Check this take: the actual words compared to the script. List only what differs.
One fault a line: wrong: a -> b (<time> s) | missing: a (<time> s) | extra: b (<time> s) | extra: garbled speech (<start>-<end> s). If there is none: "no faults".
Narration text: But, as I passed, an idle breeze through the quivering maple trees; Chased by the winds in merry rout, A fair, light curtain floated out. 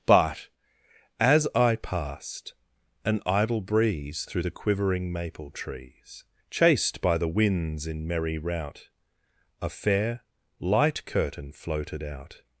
no faults